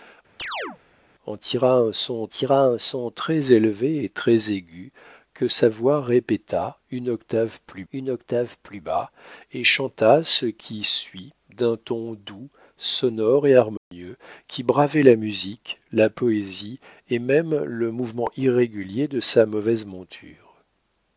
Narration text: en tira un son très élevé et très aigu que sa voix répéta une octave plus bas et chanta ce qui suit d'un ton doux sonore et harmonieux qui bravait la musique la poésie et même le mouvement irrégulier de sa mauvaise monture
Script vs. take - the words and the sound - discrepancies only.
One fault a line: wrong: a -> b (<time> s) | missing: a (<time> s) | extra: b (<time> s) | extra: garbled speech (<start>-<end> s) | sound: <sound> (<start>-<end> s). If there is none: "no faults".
sound: chirp (0.4-0.8 s)
extra: tira un son (2.3 s)
extra: une octave plus (7.9 s)
sound: dropout (13.8-13.9 s)